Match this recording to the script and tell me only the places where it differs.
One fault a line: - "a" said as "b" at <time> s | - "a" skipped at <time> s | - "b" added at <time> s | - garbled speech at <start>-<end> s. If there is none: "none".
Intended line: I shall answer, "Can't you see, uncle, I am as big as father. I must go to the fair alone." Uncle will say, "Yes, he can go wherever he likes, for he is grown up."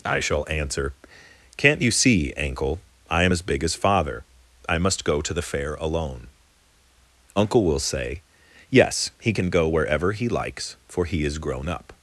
- "uncle" said as "ankle" at 2.3 s